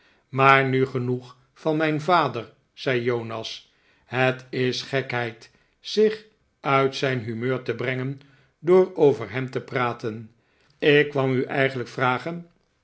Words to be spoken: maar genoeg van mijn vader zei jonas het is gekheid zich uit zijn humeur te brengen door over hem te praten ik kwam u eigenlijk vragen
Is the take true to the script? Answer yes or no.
no